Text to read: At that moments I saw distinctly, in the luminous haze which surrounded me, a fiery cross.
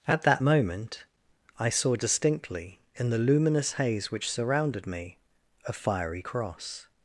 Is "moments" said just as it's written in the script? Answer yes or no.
no